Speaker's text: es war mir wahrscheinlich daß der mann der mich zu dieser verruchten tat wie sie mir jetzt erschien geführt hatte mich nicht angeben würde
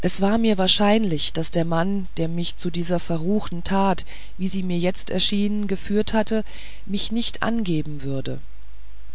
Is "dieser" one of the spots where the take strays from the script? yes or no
no